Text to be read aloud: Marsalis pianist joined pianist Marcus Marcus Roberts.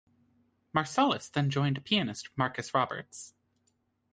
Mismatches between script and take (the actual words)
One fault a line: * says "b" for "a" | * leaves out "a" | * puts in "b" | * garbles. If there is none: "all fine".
* says "then" for "pianist"
* leaves out "Marcus"